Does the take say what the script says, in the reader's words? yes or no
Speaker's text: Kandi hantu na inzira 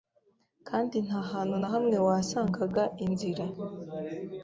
no